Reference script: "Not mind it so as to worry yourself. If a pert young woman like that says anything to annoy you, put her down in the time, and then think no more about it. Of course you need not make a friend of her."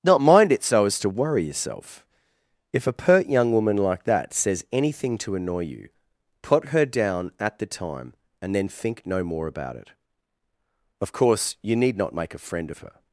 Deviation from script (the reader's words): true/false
true